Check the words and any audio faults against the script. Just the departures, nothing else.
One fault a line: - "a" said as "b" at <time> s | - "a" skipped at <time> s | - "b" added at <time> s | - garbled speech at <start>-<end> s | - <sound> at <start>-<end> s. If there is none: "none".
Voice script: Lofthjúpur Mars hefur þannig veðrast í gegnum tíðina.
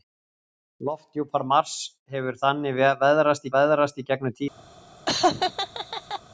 - "veðrast" added at 3.6 s
- laugh at 5.1-6.2 s